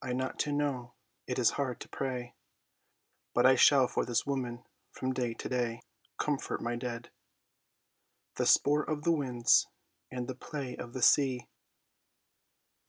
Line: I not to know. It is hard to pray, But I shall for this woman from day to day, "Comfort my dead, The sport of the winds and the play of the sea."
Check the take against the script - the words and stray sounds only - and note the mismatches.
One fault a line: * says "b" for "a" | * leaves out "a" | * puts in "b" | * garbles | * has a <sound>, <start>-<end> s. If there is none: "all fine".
all fine